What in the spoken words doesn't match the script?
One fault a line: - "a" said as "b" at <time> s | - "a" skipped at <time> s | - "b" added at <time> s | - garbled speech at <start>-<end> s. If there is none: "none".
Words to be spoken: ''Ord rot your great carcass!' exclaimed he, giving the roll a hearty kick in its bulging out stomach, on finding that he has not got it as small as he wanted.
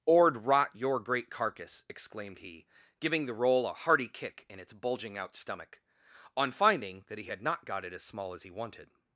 - "has" said as "had" at 7.2 s